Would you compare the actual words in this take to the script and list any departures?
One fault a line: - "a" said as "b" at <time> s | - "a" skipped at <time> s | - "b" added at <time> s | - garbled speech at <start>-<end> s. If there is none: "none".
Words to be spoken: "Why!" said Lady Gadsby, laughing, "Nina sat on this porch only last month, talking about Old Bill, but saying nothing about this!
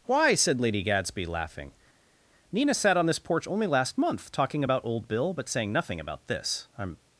- "I'm" added at 6.8 s